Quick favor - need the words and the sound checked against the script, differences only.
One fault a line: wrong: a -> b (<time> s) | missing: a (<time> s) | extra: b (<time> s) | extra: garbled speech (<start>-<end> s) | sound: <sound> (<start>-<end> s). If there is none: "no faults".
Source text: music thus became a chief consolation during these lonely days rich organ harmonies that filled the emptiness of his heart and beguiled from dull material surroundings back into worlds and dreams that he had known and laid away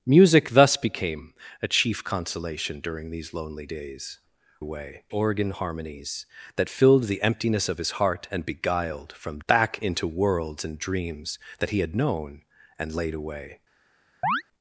wrong: rich -> away (4.6 s)
missing: dull material surroundings (9.4 s)
sound: chirp (14.2-14.4 s)